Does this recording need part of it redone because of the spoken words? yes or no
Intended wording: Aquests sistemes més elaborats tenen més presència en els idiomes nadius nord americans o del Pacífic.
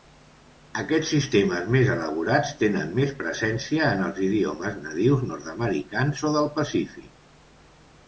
no